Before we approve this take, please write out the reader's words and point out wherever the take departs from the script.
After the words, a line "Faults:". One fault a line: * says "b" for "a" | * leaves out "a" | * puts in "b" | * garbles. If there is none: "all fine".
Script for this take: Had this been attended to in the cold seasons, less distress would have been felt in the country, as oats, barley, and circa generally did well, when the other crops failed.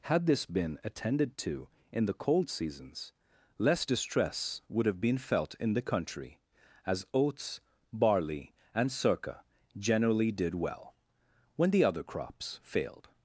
Had this been attended to in the cold seasons, less distress would have been felt in the country, as oats, barley, and circa generally did well, when the other crops failed.
Faults:
all fine